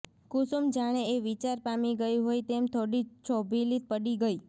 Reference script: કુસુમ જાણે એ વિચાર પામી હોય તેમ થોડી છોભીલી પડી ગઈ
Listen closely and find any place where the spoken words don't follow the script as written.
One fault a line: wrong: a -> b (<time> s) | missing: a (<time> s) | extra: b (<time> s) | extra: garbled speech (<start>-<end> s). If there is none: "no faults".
extra: ગઈ (2.0 s)